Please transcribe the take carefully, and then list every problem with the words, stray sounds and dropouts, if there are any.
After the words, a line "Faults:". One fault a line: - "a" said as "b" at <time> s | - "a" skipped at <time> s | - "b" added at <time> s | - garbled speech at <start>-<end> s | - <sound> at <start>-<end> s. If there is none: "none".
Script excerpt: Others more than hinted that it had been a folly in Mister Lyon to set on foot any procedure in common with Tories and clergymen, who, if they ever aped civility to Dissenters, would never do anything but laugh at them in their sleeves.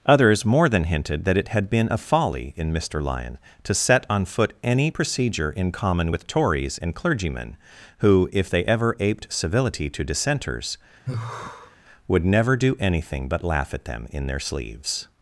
Others more than hinted that it had been a folly in Mister Lyon to set on foot any procedure in common with Tories and clergymen, who, if they ever aped civility to Dissenters, would never do anything but laugh at them in their sleeves.
Faults:
- sigh at 11.1-11.8 s